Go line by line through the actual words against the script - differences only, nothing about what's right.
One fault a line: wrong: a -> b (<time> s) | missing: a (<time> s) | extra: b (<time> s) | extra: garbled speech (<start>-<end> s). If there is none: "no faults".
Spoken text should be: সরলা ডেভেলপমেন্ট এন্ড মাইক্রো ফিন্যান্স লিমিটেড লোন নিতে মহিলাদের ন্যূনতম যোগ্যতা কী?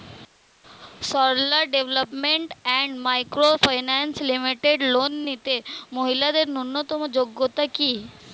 no faults